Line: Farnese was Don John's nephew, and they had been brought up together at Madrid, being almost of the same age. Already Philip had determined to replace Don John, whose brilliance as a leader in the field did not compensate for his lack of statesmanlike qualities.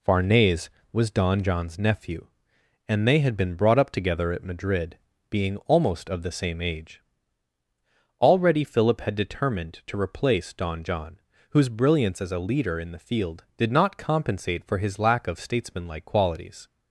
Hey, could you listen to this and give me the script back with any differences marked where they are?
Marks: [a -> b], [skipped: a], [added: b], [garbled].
Farnese was Don John's nephew, and they had been brought up together at Madrid, being almost of the same age. Already Philip had determined to replace Don John, whose brilliance as a leader in the field did not compensate for his lack of statesmanlike qualities.